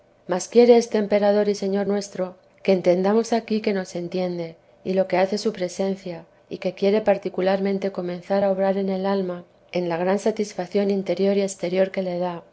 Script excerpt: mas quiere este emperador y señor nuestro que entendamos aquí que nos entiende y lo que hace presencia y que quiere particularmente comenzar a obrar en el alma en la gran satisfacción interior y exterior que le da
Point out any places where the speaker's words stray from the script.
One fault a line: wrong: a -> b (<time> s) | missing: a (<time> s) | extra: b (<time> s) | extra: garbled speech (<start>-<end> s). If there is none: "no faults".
extra: su (5.4 s)